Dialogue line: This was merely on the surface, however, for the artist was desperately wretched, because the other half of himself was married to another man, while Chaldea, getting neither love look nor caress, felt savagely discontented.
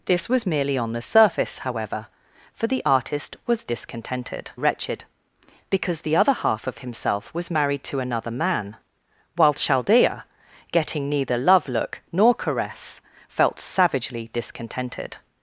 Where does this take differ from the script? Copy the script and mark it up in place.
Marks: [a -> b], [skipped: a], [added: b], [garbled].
This was merely on the surface, however, for the artist was [desperately -> discontented] wretched, because the other half of himself was married to another man, while Chaldea, getting neither love look nor caress, felt savagely discontented.